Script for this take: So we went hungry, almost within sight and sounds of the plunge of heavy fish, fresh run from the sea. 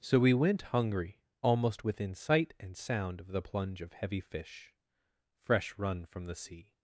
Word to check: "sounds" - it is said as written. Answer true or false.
false